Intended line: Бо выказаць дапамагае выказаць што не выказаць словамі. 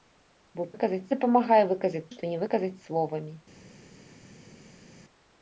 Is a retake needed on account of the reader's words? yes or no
no